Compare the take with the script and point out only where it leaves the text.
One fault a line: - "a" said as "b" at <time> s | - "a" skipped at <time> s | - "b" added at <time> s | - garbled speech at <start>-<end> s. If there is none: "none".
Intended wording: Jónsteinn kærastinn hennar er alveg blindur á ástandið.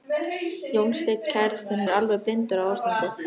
- "hennar" skipped at 1.8 s